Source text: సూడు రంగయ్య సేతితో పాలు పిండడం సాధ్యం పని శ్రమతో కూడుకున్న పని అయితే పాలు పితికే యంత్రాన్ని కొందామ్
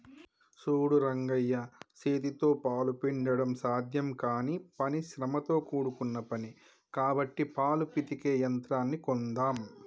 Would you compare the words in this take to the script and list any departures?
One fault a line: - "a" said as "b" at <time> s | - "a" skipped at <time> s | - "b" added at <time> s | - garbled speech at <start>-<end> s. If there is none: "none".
- "కానీ" added at 4.2 s
- "అయితే" said as "కాబట్టి" at 6.9 s